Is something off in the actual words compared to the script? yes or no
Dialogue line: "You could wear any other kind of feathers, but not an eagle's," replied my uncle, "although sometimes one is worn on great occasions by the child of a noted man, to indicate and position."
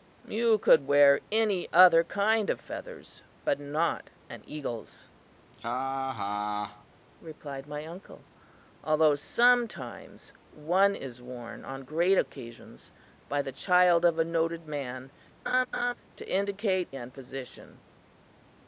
no